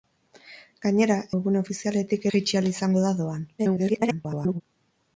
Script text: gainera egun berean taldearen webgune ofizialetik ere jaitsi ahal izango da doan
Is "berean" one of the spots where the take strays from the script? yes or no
yes